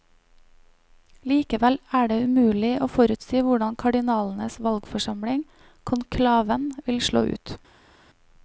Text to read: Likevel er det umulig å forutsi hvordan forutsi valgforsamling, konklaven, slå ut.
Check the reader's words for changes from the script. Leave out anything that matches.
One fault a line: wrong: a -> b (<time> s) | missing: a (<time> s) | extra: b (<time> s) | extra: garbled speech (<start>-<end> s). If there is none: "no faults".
wrong: forutsi -> kardinalenes (3.8 s)
extra: vil (6.9 s)